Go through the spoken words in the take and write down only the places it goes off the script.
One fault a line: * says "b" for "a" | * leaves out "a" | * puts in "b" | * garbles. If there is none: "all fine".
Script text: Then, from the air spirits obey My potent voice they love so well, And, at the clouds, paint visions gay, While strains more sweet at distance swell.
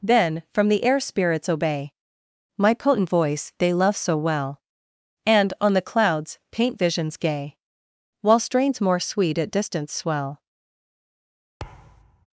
* says "on" for "at"